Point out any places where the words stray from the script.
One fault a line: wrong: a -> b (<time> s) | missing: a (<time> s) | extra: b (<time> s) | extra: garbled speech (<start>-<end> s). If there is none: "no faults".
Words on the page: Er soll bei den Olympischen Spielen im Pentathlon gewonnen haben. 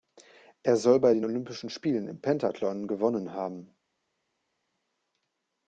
no faults